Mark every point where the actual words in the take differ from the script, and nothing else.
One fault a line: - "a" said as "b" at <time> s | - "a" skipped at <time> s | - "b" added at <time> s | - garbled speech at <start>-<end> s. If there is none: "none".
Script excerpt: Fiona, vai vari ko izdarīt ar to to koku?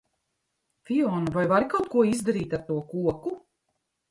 - "kaut" added at 1.7 s
- "to" skipped at 2.8 s